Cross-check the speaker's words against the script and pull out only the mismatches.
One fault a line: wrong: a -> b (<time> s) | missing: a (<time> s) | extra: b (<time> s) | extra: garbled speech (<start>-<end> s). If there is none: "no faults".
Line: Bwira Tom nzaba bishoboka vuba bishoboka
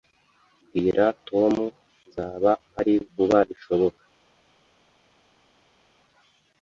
wrong: bishoboka -> mpari (2.7 s)